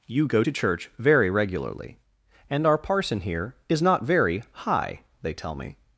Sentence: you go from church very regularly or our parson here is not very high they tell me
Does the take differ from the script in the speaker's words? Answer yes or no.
yes